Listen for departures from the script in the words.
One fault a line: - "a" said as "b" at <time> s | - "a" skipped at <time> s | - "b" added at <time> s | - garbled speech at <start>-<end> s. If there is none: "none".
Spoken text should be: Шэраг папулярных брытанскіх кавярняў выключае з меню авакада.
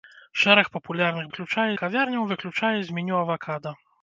- "брытанскіх" said as "выключае" at 1.3 s